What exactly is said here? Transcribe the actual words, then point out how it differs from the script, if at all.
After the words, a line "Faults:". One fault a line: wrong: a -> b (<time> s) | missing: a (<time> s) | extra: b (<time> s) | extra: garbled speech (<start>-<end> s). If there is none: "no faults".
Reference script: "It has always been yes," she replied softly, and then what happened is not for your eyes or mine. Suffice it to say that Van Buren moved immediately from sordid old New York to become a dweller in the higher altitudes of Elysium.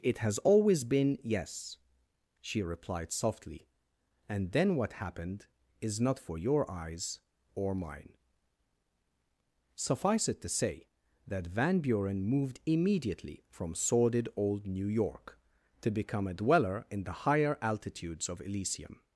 "It has always been yes," she replied softly, and then what happened is not for your eyes or mine. Suffice it to say that Van Buren moved immediately from sordid old New York to become a dweller in the higher altitudes of Elysium.
Faults:
no faults